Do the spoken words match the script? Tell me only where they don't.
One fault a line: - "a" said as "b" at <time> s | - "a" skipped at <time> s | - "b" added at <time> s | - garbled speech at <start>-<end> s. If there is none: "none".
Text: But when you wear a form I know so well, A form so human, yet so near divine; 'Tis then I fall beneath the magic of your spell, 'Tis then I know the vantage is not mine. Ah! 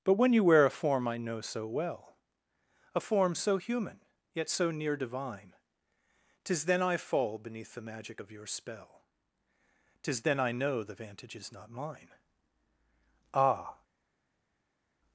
none